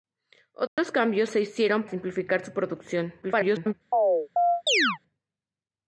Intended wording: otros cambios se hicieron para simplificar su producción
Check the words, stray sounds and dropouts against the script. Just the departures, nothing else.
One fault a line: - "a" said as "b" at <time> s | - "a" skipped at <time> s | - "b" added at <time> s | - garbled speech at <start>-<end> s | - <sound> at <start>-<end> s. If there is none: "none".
- dropout at 0.7-0.8 s
- "para" skipped at 1.9 s
- garbled speech at 3.2-3.7 s
- chirp at 3.9-5.0 s